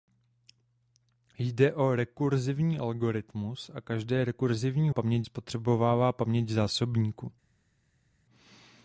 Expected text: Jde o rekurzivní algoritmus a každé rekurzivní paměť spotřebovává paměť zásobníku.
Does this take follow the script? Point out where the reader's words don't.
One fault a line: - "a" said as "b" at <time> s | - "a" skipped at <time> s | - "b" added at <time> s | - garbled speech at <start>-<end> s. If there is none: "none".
none